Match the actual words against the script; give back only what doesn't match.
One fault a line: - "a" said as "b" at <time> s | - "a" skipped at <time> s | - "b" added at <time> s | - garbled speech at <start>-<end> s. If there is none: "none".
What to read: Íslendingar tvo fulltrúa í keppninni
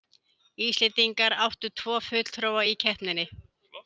- "áttu" added at 1.4 s